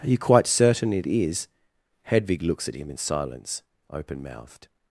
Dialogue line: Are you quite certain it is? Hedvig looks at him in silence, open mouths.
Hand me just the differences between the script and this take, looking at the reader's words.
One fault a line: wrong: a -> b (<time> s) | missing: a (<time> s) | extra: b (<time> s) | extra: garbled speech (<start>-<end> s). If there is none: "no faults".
wrong: mouths -> mouthed (4.2 s)